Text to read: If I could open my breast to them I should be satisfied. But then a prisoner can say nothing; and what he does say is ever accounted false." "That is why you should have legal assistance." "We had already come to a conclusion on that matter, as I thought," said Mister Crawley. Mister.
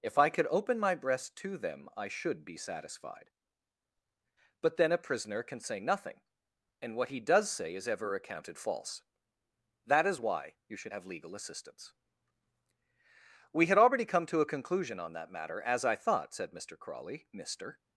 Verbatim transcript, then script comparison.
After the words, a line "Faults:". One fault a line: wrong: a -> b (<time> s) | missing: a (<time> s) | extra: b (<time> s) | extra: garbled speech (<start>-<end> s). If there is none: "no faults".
If I could open my breast to them I should be satisfied. But then a prisoner can say nothing; and what he does say is ever accounted false." "That is why you should have legal assistance." "We had already come to a conclusion on that matter, as I thought," said Mister Crawley. Mister.
Faults:
no faults